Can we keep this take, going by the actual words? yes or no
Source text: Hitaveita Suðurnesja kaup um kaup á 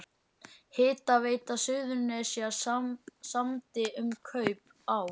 no